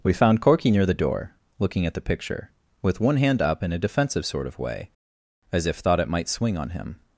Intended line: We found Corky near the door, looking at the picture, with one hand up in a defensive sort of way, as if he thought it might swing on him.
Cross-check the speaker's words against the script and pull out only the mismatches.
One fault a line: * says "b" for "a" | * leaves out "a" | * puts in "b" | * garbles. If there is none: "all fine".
* leaves out "he"